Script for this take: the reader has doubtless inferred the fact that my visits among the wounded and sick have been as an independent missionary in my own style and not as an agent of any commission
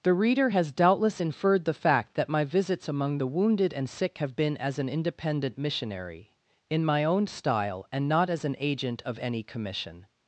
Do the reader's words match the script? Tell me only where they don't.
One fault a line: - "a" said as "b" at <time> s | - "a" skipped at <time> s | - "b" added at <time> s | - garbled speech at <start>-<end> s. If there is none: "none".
none